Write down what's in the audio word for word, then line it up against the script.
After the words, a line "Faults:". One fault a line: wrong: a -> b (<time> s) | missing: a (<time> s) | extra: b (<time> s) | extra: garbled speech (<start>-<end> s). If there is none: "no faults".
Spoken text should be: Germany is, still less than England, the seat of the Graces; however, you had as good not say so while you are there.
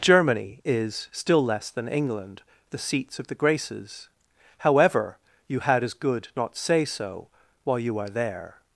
Germany is, still less than England, the seats of the Graces; however, you had as good not say so while you are there.
Faults:
wrong: seat -> seats (2.8 s)